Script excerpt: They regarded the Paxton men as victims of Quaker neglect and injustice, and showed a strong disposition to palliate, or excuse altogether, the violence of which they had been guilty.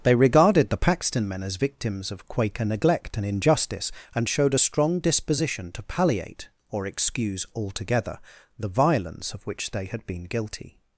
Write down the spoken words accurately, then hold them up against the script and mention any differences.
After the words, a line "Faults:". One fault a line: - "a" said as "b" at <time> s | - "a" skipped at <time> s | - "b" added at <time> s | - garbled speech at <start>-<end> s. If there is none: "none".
They regarded the Paxton men as victims of Quaker neglect and injustice, and showed a strong disposition to palliate, or excuse altogether, the violence of which they had been guilty.
Faults:
none